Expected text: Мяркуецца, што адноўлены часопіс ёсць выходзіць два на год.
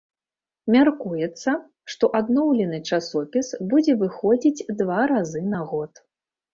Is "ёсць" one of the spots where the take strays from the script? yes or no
yes